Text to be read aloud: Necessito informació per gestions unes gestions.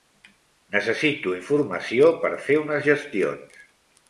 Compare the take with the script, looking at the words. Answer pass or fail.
fail